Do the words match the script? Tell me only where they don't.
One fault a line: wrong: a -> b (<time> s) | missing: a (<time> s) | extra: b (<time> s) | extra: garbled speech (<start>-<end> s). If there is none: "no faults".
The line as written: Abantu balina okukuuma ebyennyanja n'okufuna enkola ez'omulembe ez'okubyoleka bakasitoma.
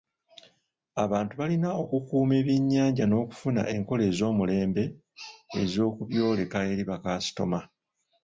extra: eri (6.7 s)